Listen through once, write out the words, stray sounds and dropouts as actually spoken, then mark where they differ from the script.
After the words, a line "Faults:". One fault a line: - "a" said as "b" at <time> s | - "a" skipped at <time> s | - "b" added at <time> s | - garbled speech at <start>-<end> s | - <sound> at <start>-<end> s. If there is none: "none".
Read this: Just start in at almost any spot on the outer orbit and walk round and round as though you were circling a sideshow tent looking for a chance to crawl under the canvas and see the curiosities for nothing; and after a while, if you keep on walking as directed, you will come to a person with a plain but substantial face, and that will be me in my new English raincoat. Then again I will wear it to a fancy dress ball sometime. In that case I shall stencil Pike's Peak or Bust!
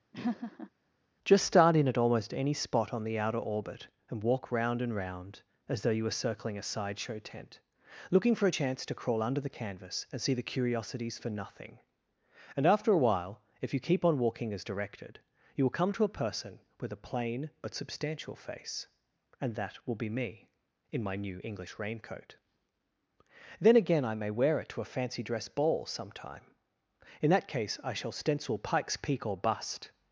Just start in at almost any spot on the outer orbit and walk round and round as though you were circling a sideshow tent looking for a chance to crawl under the canvas and see the curiosities for nothing; and after a while, if you keep on walking as directed, you will come to a person with a plain but substantial face, and that will be me in my new English raincoat. Then again I may wear it to a fancy dress ball sometime. In that case I shall stencil Pike's Peak or Bust!
Faults:
- laugh at 0.1-0.7 s
- "will" said as "may" at 24.1 s